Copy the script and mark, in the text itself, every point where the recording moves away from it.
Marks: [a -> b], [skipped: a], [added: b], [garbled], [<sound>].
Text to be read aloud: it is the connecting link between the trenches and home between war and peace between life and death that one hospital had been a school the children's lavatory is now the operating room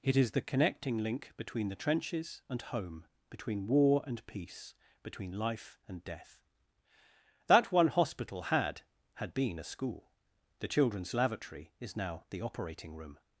it is the connecting link between the trenches and home between war and peace between life and death that one hospital had [added: had] been a school the children's lavatory is now the operating room